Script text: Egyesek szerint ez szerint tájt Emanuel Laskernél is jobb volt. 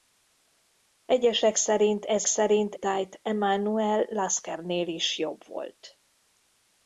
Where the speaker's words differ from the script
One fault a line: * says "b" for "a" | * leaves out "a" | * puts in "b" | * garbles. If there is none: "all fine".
all fine